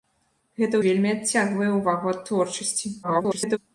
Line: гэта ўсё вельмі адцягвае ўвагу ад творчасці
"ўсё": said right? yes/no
no